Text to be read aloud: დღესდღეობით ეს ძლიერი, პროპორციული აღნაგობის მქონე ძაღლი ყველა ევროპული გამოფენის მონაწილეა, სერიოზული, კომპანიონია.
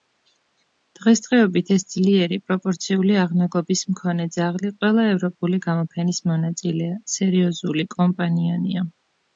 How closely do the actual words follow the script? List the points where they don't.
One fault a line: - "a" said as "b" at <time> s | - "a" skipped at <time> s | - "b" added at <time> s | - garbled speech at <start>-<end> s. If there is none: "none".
none